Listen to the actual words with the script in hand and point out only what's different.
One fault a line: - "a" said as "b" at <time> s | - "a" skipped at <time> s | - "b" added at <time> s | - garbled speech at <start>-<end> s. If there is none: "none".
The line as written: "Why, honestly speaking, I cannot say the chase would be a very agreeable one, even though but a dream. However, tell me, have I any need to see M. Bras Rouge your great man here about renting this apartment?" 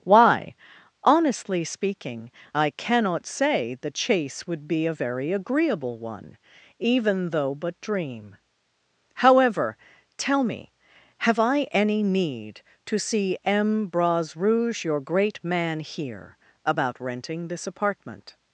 - "a" skipped at 7.8 s